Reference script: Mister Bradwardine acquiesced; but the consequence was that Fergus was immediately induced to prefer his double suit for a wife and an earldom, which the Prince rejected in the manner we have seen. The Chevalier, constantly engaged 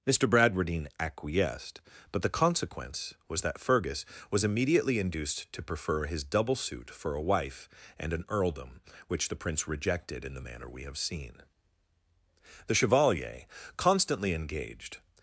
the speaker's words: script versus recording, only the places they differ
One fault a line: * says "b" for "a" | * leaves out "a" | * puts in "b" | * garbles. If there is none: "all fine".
all fine